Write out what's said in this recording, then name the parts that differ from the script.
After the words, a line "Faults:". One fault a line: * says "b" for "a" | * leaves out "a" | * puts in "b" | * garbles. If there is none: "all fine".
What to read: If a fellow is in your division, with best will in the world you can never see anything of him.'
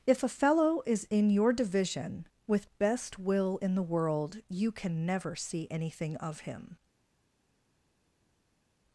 If a fellow is in your division, with best will in the world you can never see anything of him.'
Faults:
all fine